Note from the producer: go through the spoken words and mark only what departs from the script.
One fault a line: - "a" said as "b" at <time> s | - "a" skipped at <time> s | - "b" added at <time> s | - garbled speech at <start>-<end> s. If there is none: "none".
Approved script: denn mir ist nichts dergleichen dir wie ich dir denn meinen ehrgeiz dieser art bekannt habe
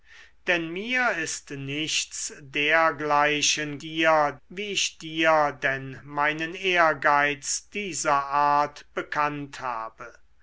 none